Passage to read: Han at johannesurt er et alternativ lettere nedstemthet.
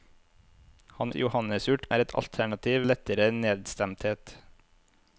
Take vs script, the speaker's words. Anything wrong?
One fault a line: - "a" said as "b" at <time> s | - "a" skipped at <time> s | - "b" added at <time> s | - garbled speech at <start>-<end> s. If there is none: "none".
none